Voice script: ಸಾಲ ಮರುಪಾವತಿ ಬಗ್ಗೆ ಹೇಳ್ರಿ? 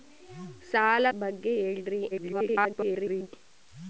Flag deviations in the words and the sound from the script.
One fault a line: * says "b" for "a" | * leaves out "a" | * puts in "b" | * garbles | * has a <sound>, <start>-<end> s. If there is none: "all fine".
* leaves out "ಮರುಪಾವತಿ"
* garbles